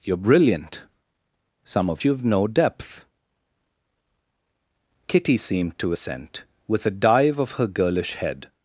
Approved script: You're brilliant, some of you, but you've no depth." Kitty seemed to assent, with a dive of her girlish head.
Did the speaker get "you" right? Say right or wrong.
wrong